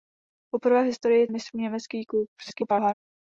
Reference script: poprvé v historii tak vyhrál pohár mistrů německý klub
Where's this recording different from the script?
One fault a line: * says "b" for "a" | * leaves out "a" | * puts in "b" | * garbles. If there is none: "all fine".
* leaves out "tak vyhrál pohár"
* garbles